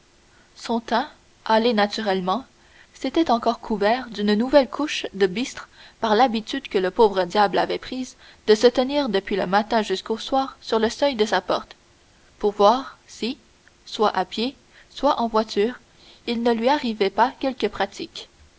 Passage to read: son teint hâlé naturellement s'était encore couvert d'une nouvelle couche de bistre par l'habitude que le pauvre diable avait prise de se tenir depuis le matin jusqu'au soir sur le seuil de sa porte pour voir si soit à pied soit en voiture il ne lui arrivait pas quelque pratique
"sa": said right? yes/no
yes